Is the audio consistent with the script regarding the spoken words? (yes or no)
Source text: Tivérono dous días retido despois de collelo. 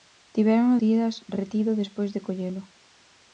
no